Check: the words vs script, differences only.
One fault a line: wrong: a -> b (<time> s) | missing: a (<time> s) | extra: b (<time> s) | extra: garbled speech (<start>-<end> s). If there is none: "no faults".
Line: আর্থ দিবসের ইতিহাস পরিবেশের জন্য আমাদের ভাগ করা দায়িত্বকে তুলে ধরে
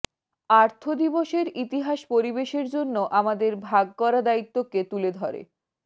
no faults